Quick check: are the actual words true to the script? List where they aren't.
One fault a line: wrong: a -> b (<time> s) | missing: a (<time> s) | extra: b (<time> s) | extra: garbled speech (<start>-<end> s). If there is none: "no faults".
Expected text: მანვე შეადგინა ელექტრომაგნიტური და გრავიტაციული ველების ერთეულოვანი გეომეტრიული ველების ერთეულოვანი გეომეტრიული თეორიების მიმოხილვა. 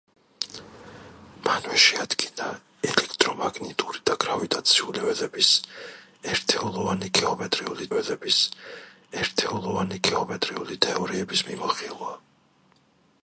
no faults